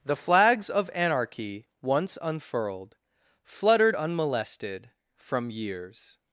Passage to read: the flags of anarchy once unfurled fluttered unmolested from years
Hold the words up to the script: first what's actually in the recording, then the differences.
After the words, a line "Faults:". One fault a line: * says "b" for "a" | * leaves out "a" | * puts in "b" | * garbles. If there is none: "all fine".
the flags of anarchy once unfurled fluttered unmolested from years
Faults:
all fine